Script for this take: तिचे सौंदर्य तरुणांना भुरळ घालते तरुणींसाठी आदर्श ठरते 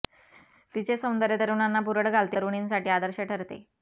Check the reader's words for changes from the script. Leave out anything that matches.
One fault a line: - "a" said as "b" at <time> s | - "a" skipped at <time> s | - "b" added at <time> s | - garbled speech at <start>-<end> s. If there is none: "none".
none